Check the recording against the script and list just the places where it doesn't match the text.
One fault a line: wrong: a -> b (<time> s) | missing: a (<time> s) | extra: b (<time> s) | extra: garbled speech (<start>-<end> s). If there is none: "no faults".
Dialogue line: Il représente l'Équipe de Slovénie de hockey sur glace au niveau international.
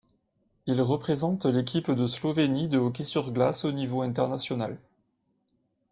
no faults